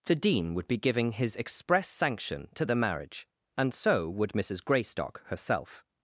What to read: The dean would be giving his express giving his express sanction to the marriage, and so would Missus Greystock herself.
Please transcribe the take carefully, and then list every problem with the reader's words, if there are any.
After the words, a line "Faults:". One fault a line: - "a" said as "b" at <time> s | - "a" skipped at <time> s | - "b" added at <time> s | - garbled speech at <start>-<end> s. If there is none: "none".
The dean would be giving his express sanction to the marriage, and so would Missus Greystock herself.
Faults:
- "giving his express" skipped at 1.9 s